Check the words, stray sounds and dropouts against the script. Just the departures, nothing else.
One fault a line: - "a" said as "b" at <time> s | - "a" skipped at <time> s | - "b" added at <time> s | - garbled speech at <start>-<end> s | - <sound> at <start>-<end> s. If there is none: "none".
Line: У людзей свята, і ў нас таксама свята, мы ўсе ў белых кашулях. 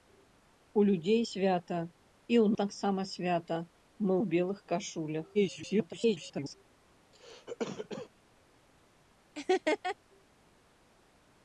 - "нас" skipped at 2.5 s
- "ўсе" skipped at 4.1 s
- garbled speech at 5.3-6.6 s
- cough at 7.1-8.1 s
- laugh at 9.3-10.0 s